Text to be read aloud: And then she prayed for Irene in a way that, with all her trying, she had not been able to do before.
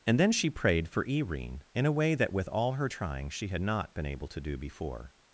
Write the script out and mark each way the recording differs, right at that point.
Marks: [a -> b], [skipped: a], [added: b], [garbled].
And then she prayed for Irene in a way that, with all her trying, she had not been able to do before.